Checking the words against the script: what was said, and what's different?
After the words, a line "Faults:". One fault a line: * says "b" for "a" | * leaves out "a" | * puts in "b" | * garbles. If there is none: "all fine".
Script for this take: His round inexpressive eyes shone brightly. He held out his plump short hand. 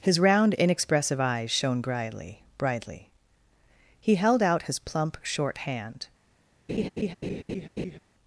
His round inexpressive eyes shone brightly brightly. He held out his plump short hand.
Faults:
* puts in "brightly"